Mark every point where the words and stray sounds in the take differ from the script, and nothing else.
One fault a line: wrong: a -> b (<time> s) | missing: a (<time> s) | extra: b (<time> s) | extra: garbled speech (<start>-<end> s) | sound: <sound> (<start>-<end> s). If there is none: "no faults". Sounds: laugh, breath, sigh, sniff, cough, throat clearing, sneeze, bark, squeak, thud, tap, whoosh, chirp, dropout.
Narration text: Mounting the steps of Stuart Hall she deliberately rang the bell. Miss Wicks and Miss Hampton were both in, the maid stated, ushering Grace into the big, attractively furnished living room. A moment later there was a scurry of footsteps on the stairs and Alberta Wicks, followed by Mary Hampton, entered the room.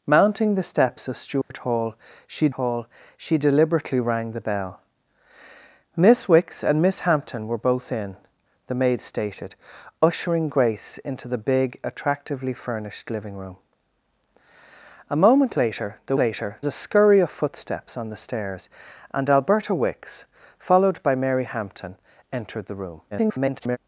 sound: dropout (1.4-1.5 s)
extra: Hall she (2.5 s)
wrong: was -> later (16.2 s)
extra: garbled speech (23.1-23.8 s)